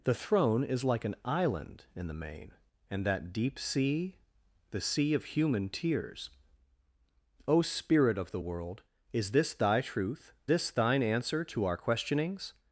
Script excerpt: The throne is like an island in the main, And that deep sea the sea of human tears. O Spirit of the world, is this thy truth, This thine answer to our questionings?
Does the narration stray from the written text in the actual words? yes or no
no